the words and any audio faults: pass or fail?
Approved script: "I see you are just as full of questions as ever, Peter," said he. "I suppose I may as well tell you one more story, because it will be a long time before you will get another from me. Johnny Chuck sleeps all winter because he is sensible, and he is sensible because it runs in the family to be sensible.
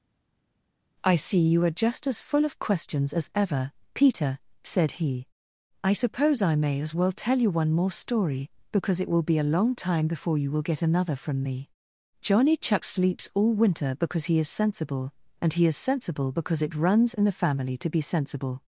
pass